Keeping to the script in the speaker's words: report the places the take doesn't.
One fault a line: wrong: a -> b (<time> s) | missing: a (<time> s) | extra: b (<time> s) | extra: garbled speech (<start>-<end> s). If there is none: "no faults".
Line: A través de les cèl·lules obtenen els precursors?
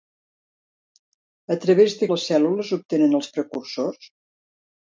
no faults